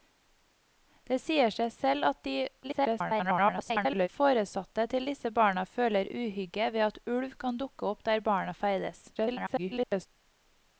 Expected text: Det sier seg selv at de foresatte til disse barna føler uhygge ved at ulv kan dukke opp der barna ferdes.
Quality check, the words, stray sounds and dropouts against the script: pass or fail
fail